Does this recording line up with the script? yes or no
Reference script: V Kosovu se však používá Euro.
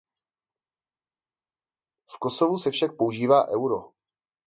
yes